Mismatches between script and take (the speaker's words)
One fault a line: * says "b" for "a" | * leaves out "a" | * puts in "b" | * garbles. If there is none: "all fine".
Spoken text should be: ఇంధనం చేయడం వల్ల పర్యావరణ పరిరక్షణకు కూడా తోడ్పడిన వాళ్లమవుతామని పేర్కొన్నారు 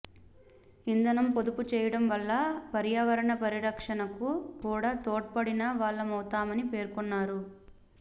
* puts in "పొదుపు"